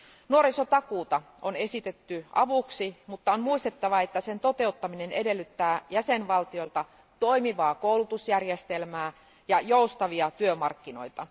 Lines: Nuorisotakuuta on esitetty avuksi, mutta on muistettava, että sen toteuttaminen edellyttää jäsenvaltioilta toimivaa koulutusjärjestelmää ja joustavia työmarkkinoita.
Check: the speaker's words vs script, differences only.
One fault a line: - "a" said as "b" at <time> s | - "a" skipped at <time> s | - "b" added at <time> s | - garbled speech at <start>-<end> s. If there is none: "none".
none